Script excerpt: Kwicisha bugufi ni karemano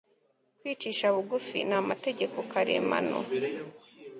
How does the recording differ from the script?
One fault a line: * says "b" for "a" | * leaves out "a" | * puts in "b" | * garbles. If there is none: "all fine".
* puts in "amategeko"